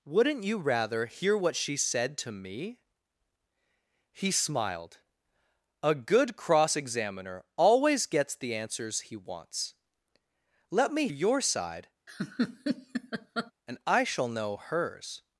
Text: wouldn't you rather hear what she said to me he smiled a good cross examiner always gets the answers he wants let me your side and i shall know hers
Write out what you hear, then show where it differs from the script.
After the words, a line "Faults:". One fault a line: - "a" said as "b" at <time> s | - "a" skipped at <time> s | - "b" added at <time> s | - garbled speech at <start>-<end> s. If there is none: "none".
wouldn't you rather hear what she said to me he smiled a good cross examiner always gets the answers he wants let me your side and i shall know hers
Faults:
none